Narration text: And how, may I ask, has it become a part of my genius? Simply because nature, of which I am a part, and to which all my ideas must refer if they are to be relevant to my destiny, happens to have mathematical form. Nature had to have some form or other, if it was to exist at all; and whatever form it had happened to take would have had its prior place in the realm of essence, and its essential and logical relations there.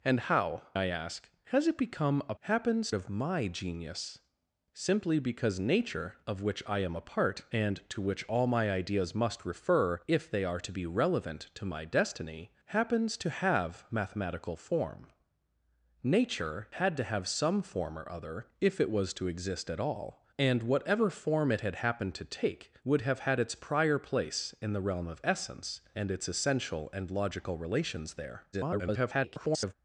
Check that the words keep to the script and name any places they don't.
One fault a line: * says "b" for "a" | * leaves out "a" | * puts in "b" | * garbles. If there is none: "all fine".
* leaves out "may"
* says "happens" for "part"
* garbles